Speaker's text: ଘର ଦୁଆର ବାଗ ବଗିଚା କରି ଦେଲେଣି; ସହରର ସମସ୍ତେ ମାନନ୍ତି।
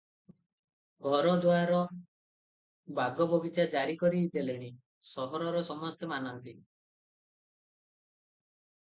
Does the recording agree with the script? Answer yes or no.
no